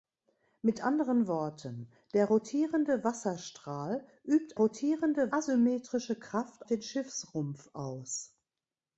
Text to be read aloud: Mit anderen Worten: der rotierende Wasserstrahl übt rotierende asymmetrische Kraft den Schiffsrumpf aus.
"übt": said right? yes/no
yes